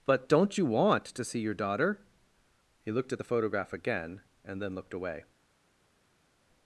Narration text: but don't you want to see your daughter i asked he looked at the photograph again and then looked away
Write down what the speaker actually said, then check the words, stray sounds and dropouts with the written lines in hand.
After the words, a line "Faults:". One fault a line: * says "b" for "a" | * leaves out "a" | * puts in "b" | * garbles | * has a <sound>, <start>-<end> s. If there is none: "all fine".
but don't you want to see your daughter he looked at the photograph again and then looked away
Faults:
* leaves out "i asked"